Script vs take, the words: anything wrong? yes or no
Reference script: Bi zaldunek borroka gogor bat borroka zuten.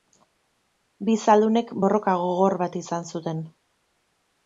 yes